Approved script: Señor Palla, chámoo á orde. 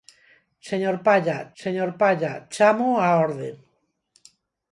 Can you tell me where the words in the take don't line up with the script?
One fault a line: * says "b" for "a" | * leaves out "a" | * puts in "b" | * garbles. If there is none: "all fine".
* puts in "señor Palla"